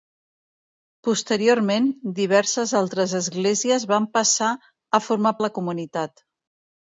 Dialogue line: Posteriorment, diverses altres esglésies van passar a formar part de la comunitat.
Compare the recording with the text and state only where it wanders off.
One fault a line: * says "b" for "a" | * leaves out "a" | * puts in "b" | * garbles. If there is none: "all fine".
* leaves out "part"